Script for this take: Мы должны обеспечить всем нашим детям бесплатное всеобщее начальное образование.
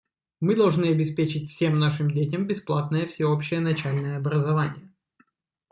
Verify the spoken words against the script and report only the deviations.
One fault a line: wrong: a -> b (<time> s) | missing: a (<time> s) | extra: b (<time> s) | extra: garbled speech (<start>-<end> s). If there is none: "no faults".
no faults